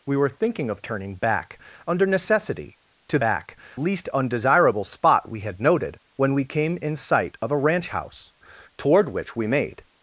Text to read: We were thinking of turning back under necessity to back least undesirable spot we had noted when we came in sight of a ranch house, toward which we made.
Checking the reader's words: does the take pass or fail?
pass